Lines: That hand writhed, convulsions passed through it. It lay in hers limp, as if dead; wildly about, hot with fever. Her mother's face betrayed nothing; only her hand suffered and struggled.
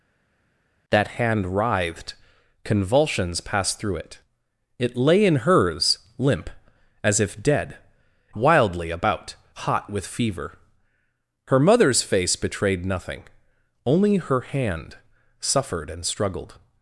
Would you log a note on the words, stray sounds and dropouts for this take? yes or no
no